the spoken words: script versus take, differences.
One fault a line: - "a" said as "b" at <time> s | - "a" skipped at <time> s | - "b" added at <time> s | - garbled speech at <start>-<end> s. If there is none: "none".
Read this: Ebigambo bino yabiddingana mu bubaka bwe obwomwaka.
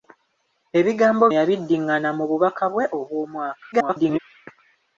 - "bino" skipped at 1.2 s
- garbled speech at 3.7-4.2 s